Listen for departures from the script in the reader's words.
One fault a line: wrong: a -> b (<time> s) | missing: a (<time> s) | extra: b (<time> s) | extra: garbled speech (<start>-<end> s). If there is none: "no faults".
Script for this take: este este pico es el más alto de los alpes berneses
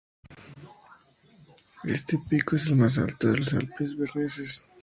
missing: este (2.2 s)